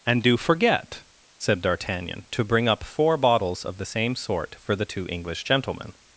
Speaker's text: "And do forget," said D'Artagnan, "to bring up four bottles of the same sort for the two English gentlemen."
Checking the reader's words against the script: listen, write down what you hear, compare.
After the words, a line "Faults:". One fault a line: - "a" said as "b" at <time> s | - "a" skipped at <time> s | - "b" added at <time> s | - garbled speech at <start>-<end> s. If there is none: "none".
"And do forget," said D'Artagnan, "to bring up four bottles of the same sort for the two English gentlemen."
Faults:
none